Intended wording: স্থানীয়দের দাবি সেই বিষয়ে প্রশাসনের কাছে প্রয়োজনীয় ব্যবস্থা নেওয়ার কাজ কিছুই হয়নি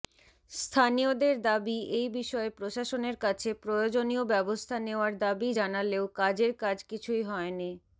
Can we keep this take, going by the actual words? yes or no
no